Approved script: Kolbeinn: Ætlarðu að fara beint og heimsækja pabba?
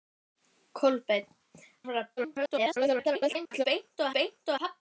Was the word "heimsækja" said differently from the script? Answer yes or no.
yes